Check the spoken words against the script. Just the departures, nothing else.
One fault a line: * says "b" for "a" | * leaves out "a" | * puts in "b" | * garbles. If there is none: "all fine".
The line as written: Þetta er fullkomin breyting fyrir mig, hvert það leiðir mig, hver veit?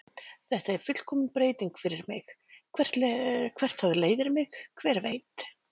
all fine